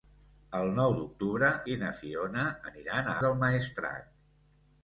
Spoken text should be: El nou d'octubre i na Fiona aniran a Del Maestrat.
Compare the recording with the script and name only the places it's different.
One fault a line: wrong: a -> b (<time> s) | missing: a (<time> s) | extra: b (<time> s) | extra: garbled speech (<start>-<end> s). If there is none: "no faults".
no faults